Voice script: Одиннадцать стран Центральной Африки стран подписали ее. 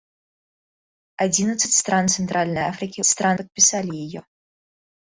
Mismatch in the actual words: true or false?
false